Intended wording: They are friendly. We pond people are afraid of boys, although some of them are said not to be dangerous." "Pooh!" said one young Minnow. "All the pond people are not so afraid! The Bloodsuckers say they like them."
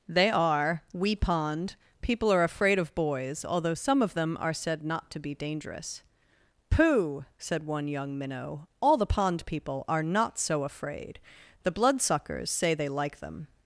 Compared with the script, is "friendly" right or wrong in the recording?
wrong